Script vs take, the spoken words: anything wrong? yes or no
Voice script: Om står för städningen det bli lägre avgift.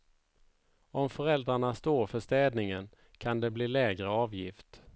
yes